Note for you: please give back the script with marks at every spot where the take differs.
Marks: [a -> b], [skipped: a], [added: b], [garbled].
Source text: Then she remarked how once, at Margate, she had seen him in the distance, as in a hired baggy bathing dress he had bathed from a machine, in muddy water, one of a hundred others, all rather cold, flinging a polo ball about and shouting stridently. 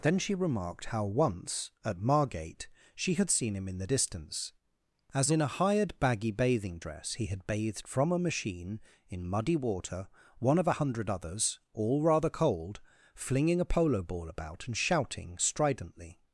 Then she remarked how once, at Margate, she had seen him in the distance, as in a hired baggy bathing dress he had bathed from a machine, in muddy water, one of a hundred others, all rather cold, flinging a polo ball about and shouting stridently.